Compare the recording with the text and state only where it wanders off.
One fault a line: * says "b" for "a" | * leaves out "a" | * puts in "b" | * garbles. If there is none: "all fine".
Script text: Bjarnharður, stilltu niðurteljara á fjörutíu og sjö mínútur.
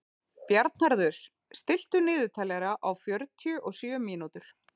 all fine